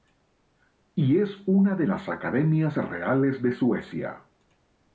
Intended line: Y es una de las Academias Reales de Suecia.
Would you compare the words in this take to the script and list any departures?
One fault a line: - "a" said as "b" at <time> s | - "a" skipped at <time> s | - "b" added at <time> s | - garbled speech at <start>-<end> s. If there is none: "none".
none